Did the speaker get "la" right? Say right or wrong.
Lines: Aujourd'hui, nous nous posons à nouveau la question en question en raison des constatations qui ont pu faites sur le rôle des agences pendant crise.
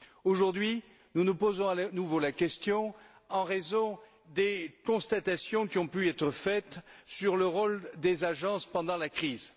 right